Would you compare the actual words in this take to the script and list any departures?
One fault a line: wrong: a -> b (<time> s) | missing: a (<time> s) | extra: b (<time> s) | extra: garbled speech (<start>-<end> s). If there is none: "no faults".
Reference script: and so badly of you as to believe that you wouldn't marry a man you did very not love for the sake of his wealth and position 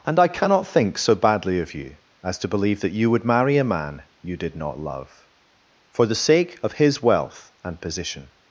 extra: i cannot think (0.2 s)
wrong: wouldn't -> would (3.1 s)
missing: very (4.5 s)